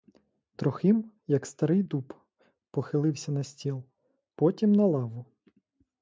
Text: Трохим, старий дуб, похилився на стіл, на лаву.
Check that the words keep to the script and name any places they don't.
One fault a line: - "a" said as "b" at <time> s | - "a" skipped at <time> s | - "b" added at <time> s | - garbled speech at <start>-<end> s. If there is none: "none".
- "як" added at 1.3 s
- "потім" added at 4.3 s